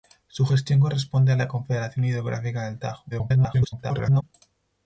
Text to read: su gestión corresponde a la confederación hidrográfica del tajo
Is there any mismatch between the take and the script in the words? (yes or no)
yes